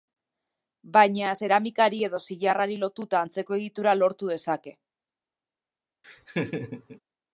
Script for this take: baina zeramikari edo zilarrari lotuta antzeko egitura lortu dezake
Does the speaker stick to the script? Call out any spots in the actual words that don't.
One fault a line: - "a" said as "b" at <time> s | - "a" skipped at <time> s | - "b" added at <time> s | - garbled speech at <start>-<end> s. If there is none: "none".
none